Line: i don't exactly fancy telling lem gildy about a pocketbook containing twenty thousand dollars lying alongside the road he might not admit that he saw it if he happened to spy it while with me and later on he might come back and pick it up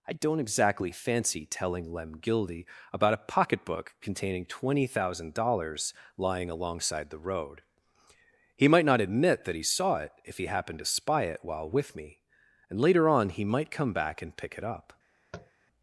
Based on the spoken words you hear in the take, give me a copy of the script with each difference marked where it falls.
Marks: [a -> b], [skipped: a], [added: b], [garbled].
i don't exactly fancy telling lem gildy about a pocketbook containing twenty thousand dollars lying alongside the road he might not admit that he saw it if he happened to spy it while with me and later on he might come back and pick it up